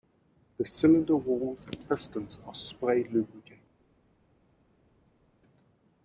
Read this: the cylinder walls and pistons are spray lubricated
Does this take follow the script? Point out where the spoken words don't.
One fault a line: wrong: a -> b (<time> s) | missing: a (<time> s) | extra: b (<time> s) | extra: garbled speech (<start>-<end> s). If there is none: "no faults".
no faults